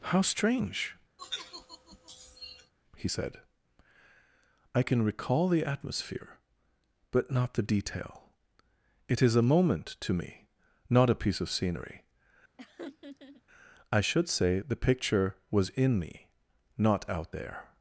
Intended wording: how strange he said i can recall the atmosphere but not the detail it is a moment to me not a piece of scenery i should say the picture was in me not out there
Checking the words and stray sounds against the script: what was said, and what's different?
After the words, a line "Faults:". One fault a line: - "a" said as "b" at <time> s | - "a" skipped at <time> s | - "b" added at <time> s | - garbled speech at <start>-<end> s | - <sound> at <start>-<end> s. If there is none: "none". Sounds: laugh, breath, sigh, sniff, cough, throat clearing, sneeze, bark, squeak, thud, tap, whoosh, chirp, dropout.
how strange he said i can recall the atmosphere but not the detail it is a moment to me not a piece of scenery i should say the picture was in me not out there
Faults:
- sigh at 1.2-2.7 s
- laugh at 12.6-13.4 s